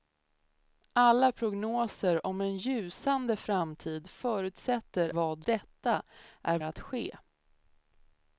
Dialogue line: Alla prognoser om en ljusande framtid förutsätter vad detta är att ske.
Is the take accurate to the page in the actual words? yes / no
yes